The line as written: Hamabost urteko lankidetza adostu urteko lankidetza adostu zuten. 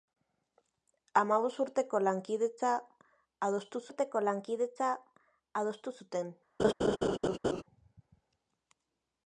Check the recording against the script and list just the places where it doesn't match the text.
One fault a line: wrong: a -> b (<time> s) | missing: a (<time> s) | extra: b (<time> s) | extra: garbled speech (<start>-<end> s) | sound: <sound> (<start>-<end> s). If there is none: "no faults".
sound: laugh (6.6-7.6 s)